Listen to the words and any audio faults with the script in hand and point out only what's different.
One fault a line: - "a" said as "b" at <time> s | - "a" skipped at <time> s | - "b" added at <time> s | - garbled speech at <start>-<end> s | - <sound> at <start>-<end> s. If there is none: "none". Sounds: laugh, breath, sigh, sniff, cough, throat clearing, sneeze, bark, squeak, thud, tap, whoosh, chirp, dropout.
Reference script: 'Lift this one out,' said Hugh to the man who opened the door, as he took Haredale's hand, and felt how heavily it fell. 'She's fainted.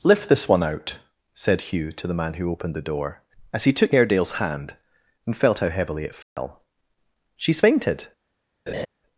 - dropout at 6.2-6.4 s
- laugh at 8.7-8.9 s